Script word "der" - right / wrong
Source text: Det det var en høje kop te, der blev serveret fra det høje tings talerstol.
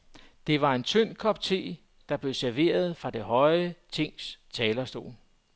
right